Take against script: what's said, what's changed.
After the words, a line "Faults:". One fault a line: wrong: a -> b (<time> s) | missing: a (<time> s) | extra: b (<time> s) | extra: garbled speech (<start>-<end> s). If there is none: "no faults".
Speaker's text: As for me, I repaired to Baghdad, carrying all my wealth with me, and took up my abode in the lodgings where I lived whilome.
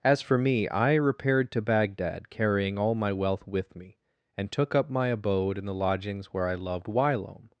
As for me, I repaired to Baghdad, carrying all my wealth with me, and took up my abode in the lodgings where I loved whilome.
Faults:
wrong: lived -> loved (6.5 s)